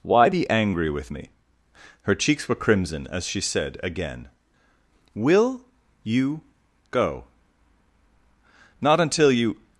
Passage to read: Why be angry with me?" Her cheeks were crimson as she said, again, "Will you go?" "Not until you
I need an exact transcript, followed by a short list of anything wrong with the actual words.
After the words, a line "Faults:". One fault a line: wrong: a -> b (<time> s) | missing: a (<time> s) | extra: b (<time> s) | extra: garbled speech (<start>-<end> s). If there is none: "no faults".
Why be angry with me?" Her cheeks were crimson as she said, again, "Will you go?" "Not until you
Faults:
no faults